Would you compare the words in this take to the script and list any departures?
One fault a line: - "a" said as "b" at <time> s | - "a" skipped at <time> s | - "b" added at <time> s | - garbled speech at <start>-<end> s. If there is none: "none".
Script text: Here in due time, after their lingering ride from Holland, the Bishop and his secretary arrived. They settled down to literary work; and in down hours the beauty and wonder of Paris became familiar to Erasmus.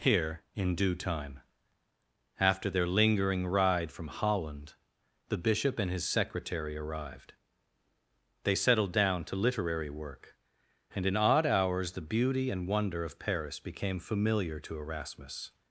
- "down" said as "odd" at 11.2 s